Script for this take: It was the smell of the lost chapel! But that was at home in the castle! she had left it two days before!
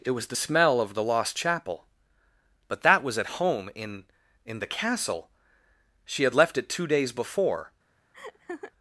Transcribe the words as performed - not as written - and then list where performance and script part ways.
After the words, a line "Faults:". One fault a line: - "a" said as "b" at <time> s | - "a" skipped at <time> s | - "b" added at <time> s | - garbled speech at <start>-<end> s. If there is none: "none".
It was the smell of the lost chapel! But that was at home in in the castle! she had left it two days before!
Faults:
- "in" added at 4.5 s